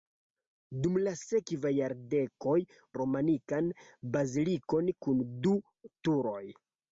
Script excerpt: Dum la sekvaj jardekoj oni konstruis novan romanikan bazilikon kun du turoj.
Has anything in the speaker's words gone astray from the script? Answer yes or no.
yes